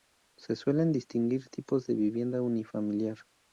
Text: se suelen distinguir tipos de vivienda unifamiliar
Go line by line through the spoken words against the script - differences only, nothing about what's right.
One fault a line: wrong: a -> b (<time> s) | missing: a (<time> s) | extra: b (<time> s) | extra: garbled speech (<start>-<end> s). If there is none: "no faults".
no faults